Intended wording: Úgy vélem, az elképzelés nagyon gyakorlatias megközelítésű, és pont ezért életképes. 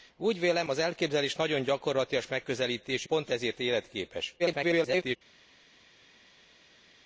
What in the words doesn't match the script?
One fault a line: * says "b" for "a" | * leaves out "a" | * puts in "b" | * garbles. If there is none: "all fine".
* leaves out "és"
* garbles